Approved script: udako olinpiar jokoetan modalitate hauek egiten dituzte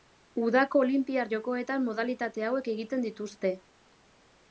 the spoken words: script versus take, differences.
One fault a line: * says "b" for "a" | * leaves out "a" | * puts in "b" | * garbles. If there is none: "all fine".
all fine